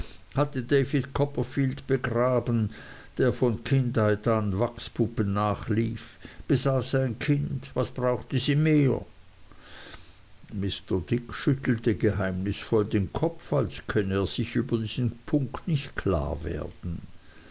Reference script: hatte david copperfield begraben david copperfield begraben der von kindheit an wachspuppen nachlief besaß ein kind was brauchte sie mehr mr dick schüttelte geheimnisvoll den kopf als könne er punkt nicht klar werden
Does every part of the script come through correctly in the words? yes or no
no